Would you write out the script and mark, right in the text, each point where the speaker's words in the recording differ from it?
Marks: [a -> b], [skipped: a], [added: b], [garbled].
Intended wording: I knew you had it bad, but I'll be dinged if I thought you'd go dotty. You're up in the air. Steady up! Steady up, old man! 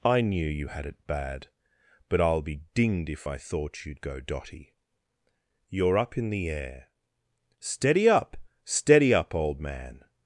I knew you had it bad, but I'll be dinged if I thought you'd go dotty. You're up in the air. Steady up! Steady up, old man!